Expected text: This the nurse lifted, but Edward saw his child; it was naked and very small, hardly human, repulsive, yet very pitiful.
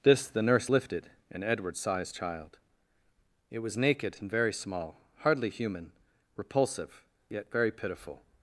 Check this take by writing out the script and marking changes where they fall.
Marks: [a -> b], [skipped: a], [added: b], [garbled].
This the nurse lifted, [but -> and] Edward saw his child; it was naked and very small, hardly human, repulsive, yet very pitiful.